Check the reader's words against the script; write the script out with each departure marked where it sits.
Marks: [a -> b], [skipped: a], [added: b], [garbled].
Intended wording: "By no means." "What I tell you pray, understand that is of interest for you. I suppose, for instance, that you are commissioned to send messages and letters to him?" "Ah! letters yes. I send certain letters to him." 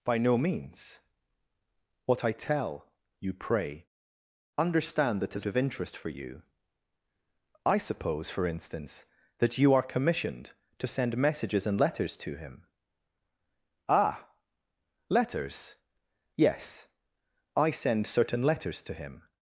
"By no means." "What I tell you pray, understand that is of interest for you. I suppose, for instance, that you are commissioned to send messages and letters to him?" "Ah! letters yes. I send certain letters to him."